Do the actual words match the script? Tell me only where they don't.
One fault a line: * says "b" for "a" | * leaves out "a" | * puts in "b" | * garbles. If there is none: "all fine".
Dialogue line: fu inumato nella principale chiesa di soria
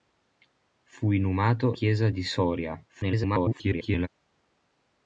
* leaves out "nella principale"
* garbles